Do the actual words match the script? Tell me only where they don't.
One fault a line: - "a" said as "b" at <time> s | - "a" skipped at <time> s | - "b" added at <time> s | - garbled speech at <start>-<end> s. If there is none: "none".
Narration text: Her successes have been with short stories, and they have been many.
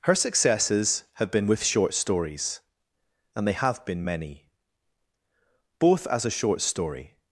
- "Both as a short story" added at 5.8 s